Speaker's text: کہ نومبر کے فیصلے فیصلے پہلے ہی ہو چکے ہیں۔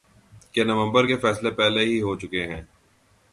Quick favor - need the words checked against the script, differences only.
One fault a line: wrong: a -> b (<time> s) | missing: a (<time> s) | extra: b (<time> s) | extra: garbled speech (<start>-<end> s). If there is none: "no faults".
missing: فیصلے (1.5 s)